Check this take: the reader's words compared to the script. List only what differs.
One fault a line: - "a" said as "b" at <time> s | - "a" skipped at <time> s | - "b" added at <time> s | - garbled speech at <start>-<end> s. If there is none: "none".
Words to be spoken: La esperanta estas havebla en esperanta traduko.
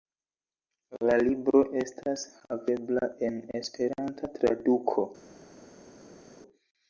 - "esperanta" said as "libro" at 1.3 s